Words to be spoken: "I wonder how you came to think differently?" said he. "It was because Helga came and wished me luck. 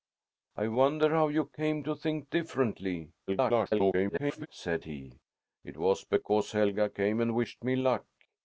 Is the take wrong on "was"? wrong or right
right